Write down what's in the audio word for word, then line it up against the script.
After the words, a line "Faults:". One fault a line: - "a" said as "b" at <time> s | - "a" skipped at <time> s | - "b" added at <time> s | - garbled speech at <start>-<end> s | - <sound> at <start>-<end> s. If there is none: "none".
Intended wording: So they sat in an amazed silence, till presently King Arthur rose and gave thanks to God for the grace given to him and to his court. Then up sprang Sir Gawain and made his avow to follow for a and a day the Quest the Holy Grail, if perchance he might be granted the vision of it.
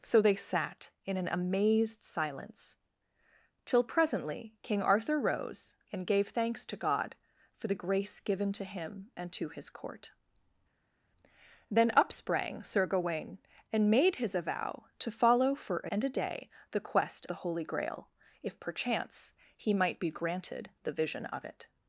So they sat in an amazed silence, till presently King Arthur rose and gave thanks to God for the grace given to him and to his court. Then up sprang Sir Gawain and made his avow to follow for a and a day the Quest the Holy Grail, if perchance he might be granted the vision of it.
Faults:
none